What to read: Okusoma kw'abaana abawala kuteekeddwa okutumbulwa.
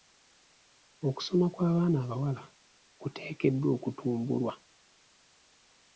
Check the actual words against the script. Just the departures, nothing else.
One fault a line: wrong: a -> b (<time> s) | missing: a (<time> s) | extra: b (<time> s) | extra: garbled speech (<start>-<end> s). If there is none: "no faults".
no faults